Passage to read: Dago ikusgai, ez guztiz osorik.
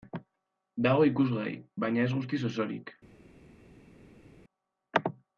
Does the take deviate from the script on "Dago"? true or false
false